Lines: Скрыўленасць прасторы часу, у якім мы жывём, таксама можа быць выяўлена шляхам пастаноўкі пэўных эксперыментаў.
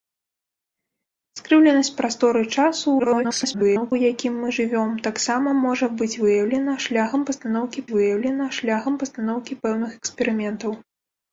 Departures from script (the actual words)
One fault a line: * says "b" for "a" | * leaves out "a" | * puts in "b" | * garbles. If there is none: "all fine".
* garbles
* puts in "выяўлена шляхам пастаноўкі"